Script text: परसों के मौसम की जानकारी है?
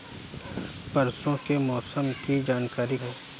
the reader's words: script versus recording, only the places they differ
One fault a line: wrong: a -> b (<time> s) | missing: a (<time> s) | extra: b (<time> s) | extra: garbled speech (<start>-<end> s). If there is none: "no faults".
no faults